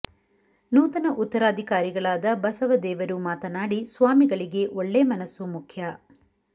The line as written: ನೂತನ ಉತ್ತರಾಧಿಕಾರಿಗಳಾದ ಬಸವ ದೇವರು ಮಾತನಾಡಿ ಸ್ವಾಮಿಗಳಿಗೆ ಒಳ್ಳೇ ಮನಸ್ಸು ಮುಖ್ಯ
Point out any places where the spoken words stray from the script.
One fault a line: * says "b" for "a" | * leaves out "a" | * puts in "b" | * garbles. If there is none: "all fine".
all fine